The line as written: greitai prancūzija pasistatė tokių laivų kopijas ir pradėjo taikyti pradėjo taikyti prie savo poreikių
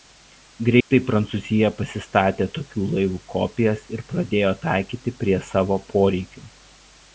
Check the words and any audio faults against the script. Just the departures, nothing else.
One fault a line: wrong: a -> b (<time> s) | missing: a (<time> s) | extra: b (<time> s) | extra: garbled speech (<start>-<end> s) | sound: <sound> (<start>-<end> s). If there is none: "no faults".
sound: dropout (0.8-0.9 s)
missing: pradėjo taikyti (5.2 s)